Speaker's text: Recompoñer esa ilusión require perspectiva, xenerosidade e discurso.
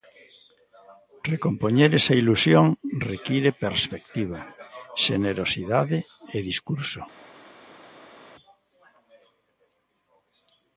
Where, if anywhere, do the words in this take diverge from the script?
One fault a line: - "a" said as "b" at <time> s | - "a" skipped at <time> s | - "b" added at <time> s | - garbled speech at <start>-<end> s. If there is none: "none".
none